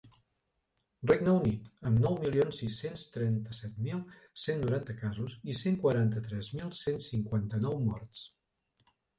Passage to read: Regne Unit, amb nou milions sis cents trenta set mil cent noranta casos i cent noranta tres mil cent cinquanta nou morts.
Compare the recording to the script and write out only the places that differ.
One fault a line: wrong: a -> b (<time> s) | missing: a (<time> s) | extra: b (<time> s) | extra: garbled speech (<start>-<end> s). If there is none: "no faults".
wrong: noranta -> quaranta (5.9 s)